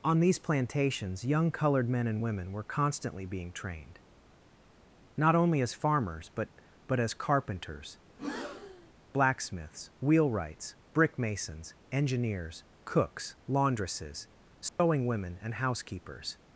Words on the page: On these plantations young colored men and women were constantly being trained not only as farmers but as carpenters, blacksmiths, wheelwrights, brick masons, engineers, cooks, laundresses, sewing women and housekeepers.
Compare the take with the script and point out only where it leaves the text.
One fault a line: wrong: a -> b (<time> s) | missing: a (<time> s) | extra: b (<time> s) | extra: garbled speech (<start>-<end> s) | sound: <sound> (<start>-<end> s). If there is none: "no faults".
extra: but (6.9 s)
sound: breath (8.1-8.9 s)
sound: dropout (14.7-14.8 s)